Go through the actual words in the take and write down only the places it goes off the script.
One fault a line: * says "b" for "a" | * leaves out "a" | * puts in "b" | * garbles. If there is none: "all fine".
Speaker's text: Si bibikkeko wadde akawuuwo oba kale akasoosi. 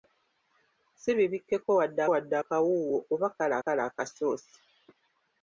* puts in "wadde"
* puts in "kale"